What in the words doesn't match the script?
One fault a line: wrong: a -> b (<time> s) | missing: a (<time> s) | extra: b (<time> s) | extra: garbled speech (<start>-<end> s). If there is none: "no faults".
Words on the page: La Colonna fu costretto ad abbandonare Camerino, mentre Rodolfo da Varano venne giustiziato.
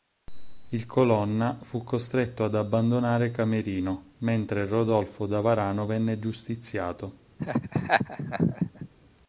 wrong: La -> Il (0.7 s)